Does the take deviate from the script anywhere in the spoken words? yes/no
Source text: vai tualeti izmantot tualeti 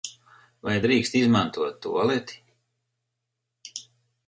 yes